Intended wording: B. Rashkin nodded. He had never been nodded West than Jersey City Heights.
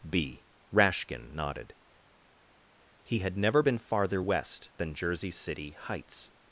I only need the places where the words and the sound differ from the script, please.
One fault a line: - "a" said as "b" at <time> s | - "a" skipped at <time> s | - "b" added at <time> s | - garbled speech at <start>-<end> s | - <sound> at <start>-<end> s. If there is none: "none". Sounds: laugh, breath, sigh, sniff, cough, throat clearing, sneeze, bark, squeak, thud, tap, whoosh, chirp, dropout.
- "nodded" said as "farther" at 3.8 s